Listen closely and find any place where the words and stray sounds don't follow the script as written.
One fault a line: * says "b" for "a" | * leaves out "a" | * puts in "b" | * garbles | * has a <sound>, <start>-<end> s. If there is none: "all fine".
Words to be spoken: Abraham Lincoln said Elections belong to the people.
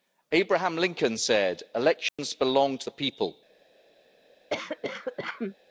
* has a dropout, 2.1-2.2 s
* has a cough, 4.5-5.6 s